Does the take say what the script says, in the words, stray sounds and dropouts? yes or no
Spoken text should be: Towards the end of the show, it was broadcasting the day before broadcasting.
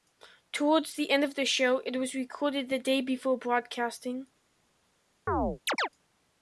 no